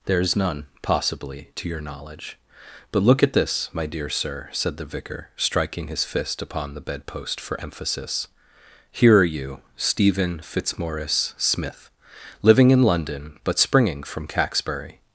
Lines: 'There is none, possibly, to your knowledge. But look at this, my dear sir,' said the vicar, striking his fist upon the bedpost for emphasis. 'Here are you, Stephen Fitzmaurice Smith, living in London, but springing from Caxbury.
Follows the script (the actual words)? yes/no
yes